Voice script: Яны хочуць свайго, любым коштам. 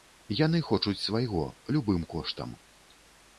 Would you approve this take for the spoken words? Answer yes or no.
yes